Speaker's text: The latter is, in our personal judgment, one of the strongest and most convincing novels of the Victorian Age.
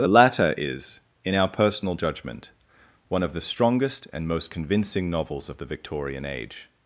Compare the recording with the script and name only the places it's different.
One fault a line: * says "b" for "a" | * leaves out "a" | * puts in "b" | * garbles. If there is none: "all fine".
all fine